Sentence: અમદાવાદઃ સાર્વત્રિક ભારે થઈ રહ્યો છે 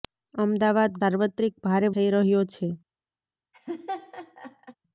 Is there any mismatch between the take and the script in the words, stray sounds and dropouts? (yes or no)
yes